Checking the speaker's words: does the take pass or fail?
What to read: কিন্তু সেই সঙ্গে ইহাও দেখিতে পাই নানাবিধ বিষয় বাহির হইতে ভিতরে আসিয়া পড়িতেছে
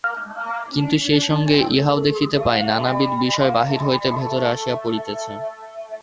pass